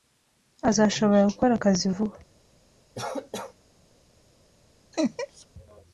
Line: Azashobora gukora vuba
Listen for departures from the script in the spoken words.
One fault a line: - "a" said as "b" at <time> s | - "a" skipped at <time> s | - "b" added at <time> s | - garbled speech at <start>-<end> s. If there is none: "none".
- "akazi" added at 1.6 s